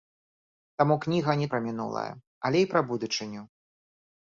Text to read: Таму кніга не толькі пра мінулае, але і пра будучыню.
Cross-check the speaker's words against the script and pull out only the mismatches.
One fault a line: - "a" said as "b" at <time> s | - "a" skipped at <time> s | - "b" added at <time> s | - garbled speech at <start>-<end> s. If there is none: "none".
- "толькі" skipped at 1.5 s